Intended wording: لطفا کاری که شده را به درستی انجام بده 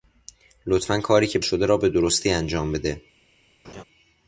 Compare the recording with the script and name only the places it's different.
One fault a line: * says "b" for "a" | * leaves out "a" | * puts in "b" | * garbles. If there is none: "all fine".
all fine